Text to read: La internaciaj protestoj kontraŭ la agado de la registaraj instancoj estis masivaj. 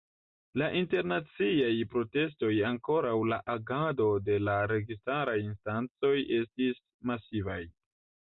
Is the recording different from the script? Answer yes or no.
no